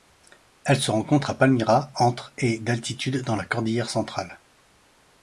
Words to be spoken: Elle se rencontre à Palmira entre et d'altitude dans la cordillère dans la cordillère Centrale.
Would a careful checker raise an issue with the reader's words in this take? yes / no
yes